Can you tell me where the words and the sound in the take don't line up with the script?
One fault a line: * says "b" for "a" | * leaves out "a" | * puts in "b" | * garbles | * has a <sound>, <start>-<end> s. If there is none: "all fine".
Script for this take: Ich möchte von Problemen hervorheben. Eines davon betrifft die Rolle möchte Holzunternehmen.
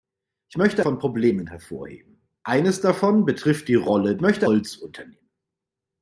all fine